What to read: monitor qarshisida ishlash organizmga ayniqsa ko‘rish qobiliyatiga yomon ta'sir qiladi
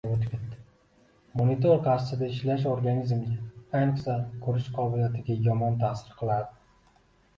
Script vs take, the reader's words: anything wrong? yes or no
no